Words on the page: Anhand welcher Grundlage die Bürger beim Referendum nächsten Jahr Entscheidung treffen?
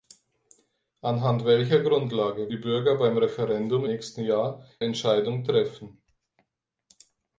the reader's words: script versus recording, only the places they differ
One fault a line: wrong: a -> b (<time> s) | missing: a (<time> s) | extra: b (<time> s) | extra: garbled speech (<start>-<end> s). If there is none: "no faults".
no faults